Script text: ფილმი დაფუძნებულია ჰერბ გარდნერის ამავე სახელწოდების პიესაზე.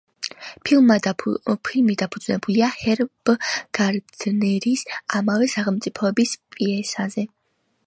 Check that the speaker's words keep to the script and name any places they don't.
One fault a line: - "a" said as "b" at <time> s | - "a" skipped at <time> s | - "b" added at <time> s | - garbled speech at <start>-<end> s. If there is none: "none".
none